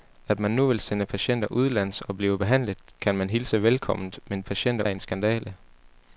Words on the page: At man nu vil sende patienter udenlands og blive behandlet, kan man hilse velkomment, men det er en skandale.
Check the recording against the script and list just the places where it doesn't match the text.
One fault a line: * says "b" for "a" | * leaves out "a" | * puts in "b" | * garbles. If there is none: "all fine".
* says "patienter" for "det"